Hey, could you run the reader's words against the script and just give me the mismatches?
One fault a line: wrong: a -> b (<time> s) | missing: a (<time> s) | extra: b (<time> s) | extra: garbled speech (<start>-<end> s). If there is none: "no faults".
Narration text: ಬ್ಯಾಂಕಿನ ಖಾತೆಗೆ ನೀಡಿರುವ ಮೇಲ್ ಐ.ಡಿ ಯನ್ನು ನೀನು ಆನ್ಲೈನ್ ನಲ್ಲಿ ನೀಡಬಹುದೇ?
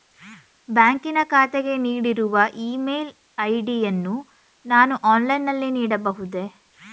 extra: ಇ (2.6 s)
wrong: ನೀನು -> ನಾನು (4.6 s)